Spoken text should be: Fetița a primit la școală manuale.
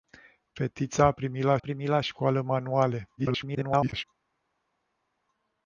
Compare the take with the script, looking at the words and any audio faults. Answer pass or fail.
fail